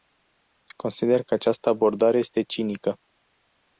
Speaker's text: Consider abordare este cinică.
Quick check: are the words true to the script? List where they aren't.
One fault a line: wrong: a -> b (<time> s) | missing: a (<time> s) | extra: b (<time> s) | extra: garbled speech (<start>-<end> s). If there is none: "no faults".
extra: că această (1.2 s)